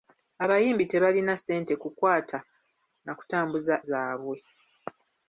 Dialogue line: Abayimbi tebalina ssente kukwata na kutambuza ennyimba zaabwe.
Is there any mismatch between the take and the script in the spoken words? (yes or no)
yes